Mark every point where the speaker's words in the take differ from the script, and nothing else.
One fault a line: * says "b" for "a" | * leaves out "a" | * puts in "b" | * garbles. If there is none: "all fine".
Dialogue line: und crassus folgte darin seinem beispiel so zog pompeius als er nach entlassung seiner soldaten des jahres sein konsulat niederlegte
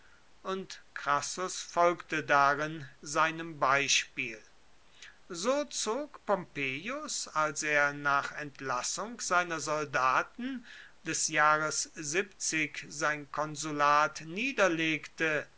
all fine